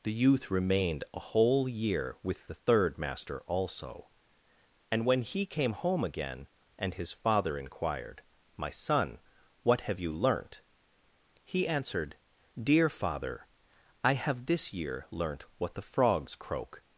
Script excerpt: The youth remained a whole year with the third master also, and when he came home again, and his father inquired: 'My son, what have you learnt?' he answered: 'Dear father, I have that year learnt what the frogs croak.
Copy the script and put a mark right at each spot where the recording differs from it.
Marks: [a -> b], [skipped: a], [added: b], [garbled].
The youth remained a whole year with the third master also, and when he came home again, and his father inquired: 'My son, what have you learnt?' he answered: 'Dear father, I have [that -> this] year learnt what the frogs croak.